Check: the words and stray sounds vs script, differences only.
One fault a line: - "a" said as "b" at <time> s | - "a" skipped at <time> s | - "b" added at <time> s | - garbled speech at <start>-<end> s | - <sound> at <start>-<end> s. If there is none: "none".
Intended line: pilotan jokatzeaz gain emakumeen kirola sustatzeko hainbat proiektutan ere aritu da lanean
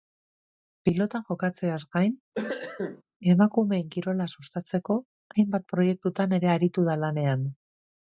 - cough at 2.3-3.0 s